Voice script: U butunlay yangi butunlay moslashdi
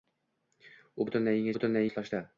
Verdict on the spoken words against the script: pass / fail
pass